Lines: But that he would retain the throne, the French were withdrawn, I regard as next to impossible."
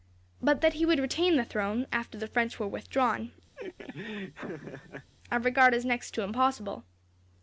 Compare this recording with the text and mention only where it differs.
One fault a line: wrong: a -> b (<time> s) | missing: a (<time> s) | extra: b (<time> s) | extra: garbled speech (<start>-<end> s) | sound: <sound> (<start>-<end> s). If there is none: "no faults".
extra: after (1.9 s)
sound: laugh (3.6-5.1 s)